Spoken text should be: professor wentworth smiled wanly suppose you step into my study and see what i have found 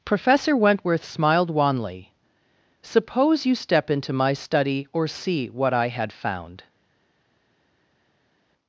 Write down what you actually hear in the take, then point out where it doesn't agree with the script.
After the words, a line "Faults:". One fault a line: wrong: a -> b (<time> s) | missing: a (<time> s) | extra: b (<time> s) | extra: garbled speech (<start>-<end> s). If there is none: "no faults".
professor wentworth smiled wanly suppose you step into my study or see what i had found
Faults:
wrong: and -> or (4.9 s)
wrong: have -> had (5.9 s)